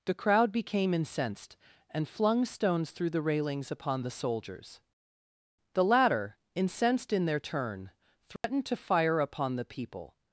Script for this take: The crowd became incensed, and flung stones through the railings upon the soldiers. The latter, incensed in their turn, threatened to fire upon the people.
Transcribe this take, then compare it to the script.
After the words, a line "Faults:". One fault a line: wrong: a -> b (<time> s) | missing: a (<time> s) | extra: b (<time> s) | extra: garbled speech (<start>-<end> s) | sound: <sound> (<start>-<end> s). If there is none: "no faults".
The crowd became incensed, and flung stones through the railings upon the soldiers. The latter, incensed in their turn, threatened to fire upon the people.
Faults:
sound: dropout (8.4-8.4 s)